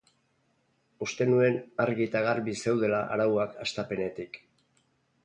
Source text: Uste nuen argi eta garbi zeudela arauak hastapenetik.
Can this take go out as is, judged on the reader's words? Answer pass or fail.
pass